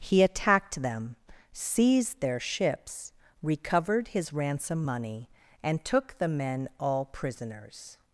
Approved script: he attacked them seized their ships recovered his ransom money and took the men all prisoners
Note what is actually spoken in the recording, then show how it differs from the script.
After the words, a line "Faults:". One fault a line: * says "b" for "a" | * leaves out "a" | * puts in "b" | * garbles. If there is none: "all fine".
he attacked them seized their ships recovered his ransom money and took the men all prisoners
Faults:
all fine